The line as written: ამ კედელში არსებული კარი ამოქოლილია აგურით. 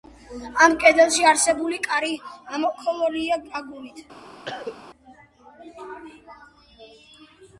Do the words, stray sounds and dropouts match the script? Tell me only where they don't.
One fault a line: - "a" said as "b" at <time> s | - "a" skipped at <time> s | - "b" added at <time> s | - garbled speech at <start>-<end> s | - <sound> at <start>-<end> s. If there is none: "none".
- cough at 4.5-4.8 s